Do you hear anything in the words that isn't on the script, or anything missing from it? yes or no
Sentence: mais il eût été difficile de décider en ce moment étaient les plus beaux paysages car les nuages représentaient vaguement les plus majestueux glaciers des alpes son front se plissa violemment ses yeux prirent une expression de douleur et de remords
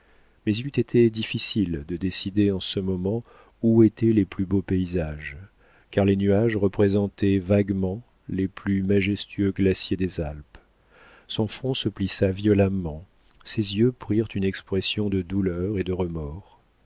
yes